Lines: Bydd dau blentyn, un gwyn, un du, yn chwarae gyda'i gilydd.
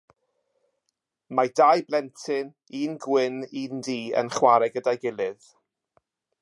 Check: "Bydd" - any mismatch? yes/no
yes